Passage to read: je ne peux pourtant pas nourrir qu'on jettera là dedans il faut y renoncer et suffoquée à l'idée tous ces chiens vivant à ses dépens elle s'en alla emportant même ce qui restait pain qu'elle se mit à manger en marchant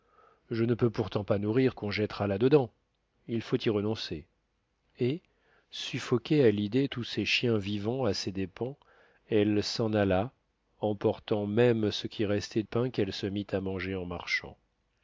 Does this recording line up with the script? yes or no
yes